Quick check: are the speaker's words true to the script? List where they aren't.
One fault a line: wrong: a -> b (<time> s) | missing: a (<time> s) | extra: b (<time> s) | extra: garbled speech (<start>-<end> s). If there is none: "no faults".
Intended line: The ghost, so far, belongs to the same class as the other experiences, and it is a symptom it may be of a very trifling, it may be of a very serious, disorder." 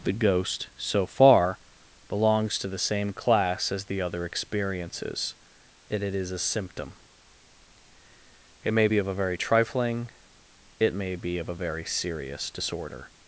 no faults